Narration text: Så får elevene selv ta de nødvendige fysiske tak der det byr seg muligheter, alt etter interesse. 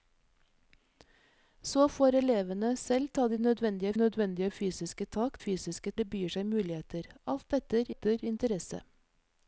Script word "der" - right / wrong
wrong